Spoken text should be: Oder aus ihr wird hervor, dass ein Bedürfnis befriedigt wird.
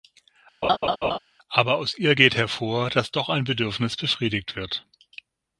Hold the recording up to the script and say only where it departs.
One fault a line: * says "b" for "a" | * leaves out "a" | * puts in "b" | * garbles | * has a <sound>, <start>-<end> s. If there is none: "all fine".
* has a laugh, 0.6-1.2 s
* says "Aber" for "Oder"
* says "geht" for "wird"
* puts in "doch"